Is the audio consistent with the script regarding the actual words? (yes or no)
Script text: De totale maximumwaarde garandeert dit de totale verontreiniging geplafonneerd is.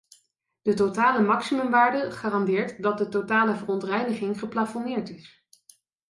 no